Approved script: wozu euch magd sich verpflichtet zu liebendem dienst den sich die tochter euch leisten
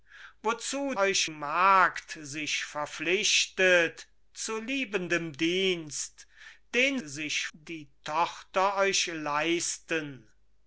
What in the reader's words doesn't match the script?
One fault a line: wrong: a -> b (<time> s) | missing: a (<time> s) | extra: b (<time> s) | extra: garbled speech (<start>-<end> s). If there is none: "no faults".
no faults